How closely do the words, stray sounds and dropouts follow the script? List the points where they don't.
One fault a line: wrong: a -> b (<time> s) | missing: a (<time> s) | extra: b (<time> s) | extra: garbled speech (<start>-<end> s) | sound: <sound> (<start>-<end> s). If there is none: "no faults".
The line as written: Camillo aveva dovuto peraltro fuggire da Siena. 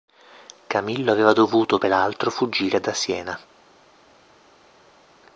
no faults